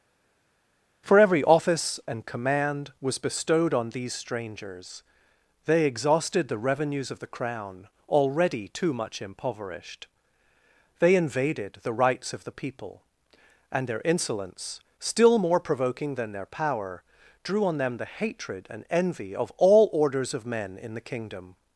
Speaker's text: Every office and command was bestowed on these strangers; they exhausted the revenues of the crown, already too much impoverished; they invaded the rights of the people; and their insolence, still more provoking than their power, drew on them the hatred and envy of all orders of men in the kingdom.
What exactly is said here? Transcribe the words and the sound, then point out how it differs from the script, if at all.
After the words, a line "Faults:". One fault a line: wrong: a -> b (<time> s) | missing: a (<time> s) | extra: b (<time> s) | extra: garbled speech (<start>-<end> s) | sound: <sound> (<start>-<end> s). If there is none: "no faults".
for Every office and command was bestowed on these strangers; they exhausted the revenues of the crown, already too much impoverished; they invaded the rights of the people; and their insolence, still more provoking than their power, drew on them the hatred and envy of all orders of men in the kingdom.
Faults:
extra: for (1.0 s)